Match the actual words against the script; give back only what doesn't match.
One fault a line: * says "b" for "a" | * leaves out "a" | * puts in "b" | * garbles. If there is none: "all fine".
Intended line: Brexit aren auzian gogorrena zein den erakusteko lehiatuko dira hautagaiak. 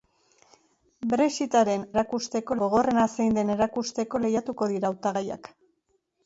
* says "erakusteko" for "auzian"